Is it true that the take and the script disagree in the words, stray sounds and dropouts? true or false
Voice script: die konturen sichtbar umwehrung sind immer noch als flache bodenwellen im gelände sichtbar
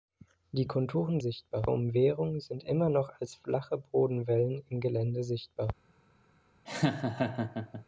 true